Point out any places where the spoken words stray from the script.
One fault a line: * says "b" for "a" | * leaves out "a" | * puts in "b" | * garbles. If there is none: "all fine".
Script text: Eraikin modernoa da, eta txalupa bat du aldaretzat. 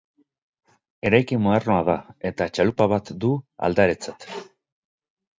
all fine